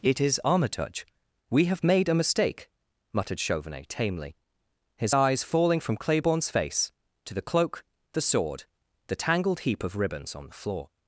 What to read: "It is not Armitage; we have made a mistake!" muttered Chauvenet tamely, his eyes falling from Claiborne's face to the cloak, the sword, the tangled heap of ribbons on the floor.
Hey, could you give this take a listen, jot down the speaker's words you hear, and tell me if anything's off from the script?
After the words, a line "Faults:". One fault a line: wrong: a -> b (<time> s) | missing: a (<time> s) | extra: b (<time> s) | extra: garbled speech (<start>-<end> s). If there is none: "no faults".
"It is Armitage; we have made a mistake!" muttered Chauvenet tamely, his eyes falling from Claiborne's face to the cloak, the sword, the tangled heap of ribbons on the floor.
Faults:
missing: not (0.4 s)